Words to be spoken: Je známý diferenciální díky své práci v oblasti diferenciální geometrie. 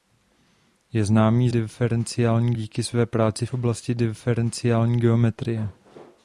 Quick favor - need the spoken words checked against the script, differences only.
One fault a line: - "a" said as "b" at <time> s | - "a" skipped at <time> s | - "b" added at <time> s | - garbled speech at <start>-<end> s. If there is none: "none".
none